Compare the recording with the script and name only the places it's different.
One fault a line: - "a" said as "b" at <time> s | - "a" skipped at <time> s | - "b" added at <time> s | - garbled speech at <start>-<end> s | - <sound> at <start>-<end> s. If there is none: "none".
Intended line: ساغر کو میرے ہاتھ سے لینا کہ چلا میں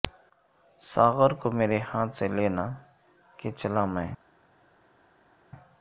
none